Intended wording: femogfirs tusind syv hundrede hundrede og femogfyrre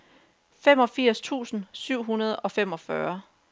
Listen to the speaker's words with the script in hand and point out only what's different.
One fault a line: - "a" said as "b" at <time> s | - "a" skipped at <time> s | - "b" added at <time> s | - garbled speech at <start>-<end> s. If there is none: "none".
- "hundrede" skipped at 2.4 s